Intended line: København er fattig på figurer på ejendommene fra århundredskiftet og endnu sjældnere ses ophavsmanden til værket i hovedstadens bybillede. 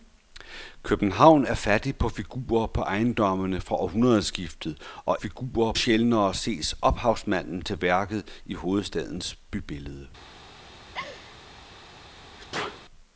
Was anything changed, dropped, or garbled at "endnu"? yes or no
yes